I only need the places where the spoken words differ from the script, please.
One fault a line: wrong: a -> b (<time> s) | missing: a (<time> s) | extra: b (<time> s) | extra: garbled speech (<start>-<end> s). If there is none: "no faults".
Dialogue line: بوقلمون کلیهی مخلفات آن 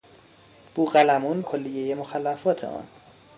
no faults